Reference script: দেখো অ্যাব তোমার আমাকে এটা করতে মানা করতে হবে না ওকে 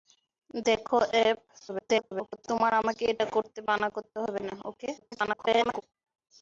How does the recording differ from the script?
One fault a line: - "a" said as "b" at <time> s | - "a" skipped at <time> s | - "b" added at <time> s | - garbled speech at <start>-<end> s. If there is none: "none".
- garbled speech at 1.7-2.4 s
- garbled speech at 5.0-5.8 s